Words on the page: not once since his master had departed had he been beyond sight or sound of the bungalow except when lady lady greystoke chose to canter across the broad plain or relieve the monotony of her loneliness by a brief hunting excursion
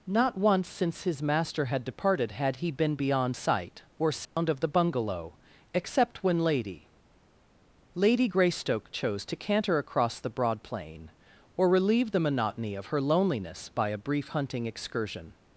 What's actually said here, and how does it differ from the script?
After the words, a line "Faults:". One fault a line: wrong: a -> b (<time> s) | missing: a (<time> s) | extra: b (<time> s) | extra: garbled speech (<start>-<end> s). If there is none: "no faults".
not once since his master had departed had he been beyond sight or sound of the bungalow except when lady lady greystoke chose to canter across the broad plain or relieve the monotony of her loneliness by a brief hunting excursion
Faults:
no faults